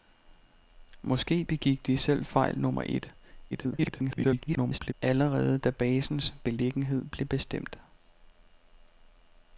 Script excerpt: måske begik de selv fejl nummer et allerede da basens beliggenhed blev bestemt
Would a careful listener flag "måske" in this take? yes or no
no